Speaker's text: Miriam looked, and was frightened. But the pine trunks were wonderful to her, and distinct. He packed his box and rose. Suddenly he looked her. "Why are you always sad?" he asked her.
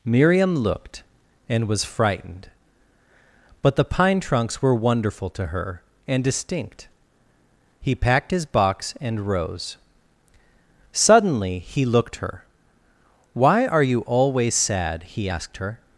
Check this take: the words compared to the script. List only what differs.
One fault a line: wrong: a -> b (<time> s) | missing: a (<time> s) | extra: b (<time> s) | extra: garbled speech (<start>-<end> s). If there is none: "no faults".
no faults